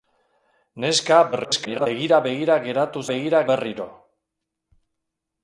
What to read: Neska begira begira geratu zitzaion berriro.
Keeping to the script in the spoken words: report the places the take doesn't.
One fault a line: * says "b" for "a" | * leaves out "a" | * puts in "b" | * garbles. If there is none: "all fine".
* garbles
* says "begira" for "zitzaion"